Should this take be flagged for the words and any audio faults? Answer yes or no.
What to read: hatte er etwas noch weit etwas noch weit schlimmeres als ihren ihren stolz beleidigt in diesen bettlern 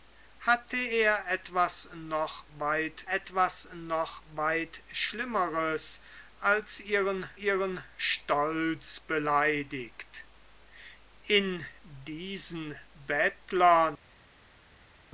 no